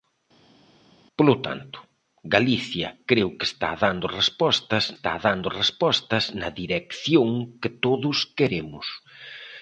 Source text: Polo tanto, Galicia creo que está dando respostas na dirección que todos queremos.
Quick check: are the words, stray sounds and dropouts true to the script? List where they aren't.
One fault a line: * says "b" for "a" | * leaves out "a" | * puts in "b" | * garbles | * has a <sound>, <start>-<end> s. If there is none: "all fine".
* puts in "está dando respostas"